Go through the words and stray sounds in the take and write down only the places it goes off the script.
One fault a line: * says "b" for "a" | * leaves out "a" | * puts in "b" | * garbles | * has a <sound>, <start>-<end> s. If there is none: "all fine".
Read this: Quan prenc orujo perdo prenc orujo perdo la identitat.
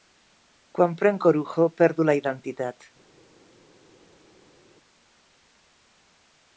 * leaves out "prenc orujo perdo"